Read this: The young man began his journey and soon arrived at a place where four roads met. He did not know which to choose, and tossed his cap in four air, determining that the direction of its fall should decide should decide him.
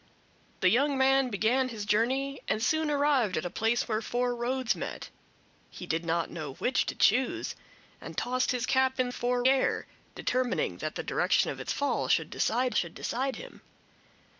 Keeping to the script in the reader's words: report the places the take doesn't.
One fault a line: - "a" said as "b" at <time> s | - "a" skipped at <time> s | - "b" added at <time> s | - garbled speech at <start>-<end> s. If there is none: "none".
none